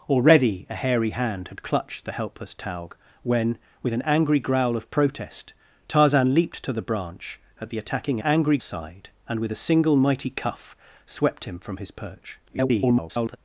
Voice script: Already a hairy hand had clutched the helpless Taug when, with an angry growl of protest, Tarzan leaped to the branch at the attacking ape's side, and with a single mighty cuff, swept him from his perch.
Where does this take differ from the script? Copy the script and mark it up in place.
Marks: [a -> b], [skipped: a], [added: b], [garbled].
Already a hairy hand had clutched the helpless Taug when, with an angry growl of protest, Tarzan leaped to the branch at the attacking [ape's -> angry] side, and with a single mighty cuff, swept him from his perch. [garbled]